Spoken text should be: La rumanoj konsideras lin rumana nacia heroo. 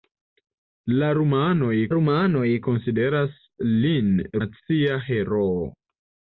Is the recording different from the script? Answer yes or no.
yes